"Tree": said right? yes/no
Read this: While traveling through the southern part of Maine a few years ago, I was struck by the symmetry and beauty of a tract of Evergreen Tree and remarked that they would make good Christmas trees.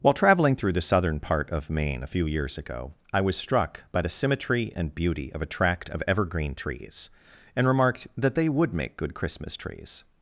no